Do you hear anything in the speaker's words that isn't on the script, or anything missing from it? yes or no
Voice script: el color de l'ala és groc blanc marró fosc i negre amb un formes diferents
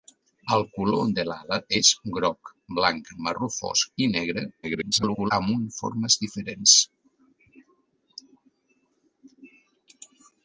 yes